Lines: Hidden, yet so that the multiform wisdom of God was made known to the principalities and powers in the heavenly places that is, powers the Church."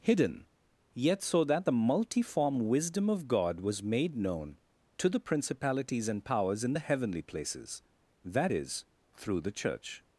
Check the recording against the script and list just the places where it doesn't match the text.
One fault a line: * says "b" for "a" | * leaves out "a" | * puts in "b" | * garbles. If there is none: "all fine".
* says "through" for "powers"